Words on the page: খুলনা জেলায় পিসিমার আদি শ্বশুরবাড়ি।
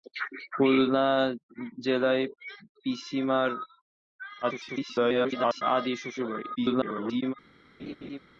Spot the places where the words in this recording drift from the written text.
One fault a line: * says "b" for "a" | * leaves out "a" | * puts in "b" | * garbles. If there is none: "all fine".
* garbles
* garbles